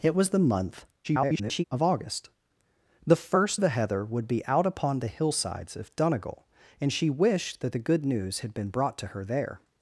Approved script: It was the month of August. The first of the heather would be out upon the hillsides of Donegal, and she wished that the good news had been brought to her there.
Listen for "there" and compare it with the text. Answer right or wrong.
right